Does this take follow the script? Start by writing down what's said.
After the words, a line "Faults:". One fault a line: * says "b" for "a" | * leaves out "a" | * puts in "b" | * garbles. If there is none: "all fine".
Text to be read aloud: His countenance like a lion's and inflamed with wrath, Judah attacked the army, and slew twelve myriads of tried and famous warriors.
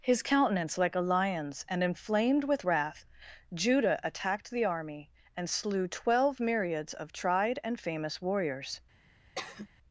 His countenance like a lion's and inflamed with wrath, Judah attacked the army, and slew twelve myriads of tried and famous warriors.
Faults:
all fine